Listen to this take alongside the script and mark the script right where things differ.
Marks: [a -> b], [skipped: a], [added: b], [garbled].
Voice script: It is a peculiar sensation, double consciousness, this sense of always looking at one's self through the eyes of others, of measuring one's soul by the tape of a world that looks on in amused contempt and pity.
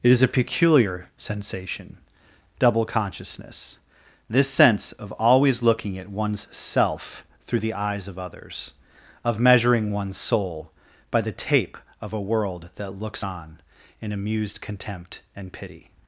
It is a peculiar sensation, double consciousness, this sense of always looking at one's self through the eyes of others, of measuring one's soul by the tape of a world that looks on in amused contempt and pity.